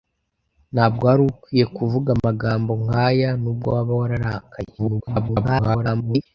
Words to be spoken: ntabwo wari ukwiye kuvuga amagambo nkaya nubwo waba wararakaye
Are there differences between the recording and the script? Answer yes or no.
yes